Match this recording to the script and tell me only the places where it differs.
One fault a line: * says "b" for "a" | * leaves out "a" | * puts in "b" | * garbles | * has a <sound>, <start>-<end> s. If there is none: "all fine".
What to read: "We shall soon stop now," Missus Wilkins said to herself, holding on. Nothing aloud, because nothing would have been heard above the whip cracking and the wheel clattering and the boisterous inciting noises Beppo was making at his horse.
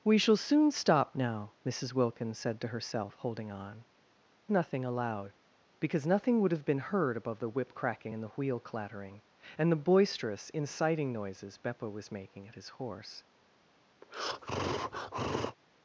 * has a breath, 14.0-15.6 s